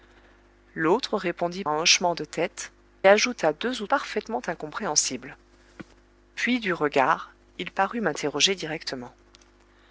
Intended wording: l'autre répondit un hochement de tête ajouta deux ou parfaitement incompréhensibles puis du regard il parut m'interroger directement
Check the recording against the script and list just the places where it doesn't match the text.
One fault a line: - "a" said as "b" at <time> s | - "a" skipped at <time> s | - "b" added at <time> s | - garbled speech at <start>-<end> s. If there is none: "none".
none